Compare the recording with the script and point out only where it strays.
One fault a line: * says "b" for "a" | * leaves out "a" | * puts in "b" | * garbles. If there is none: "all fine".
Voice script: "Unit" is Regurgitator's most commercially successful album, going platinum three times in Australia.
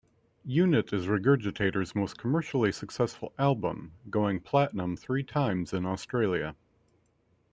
all fine